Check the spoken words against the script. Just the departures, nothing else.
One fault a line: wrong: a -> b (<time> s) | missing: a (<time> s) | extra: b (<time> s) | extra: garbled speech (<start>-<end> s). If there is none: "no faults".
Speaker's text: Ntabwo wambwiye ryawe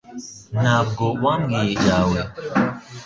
no faults